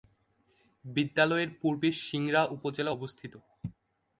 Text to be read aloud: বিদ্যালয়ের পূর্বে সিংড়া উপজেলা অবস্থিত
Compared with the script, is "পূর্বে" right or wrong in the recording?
right